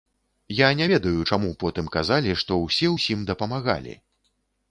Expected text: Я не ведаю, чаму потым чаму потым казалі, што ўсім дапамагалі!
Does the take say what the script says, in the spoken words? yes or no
no